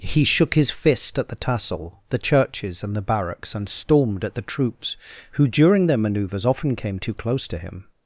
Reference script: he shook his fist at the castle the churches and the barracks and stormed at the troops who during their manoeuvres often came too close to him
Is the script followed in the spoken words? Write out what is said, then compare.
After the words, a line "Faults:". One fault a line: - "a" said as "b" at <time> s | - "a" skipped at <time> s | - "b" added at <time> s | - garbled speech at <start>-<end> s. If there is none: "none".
he shook his fist at the tassel the churches and the barracks and stormed at the troops who during their manoeuvres often came too close to him
Faults:
- "castle" said as "tassel" at 1.4 s